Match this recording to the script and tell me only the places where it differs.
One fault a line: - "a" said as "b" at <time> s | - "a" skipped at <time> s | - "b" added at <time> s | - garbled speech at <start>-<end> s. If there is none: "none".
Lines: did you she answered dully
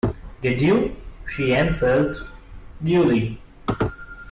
none